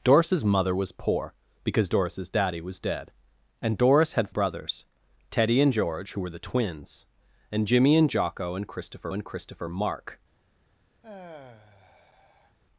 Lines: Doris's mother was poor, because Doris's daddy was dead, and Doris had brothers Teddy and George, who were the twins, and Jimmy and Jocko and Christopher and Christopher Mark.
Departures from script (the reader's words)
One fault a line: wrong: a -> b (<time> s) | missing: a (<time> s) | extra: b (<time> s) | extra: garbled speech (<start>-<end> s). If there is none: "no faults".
no faults